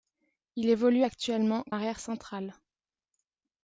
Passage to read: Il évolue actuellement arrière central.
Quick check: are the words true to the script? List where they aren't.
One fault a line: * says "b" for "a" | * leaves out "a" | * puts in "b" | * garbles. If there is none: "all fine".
all fine